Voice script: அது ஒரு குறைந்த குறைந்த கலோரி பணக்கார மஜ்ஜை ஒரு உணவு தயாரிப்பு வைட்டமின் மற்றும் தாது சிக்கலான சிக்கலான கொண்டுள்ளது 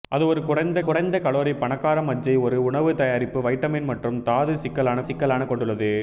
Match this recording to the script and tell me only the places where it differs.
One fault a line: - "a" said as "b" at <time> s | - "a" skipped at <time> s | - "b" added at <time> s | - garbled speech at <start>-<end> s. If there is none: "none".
none